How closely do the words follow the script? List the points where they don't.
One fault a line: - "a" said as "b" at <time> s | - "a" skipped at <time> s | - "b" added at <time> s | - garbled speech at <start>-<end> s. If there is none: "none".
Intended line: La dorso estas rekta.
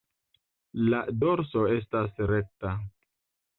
none